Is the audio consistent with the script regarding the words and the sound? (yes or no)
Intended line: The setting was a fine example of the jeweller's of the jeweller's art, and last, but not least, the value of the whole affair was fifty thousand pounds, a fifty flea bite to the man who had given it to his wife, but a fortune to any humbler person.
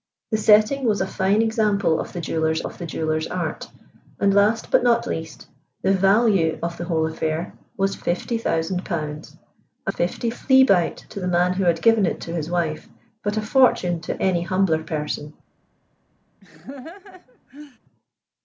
no